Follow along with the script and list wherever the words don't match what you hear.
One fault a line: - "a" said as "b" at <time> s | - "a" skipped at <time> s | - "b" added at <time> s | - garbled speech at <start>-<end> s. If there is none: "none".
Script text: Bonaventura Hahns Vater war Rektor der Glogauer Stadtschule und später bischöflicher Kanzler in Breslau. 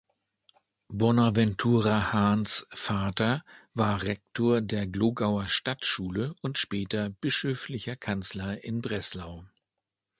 none